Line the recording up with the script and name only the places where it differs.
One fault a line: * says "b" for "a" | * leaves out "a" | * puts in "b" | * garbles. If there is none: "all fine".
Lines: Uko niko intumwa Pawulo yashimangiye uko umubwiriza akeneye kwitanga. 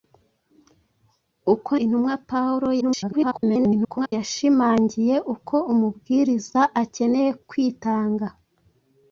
* leaves out "niko"
* garbles